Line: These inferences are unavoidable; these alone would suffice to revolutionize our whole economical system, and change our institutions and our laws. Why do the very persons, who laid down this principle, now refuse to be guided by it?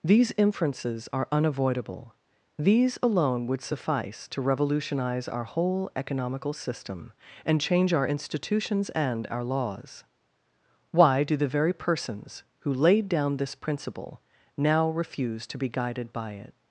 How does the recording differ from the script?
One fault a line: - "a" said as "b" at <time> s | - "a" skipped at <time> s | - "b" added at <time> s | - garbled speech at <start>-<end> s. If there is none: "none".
none